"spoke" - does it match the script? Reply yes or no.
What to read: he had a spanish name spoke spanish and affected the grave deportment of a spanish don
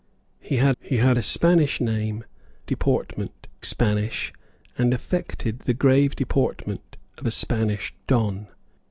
no